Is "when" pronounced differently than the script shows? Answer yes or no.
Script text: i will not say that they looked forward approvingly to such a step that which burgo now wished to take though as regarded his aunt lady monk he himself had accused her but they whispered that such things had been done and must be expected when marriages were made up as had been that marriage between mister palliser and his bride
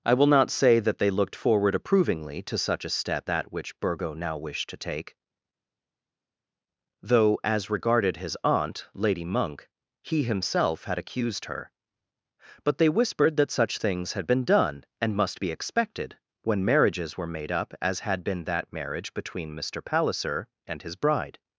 no